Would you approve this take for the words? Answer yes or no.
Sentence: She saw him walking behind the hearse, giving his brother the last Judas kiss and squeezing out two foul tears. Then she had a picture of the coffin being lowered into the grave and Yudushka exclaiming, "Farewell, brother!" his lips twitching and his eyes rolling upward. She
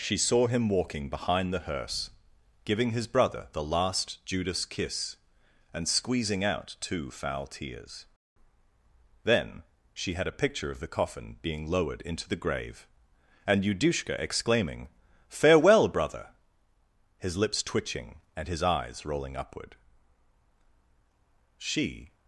yes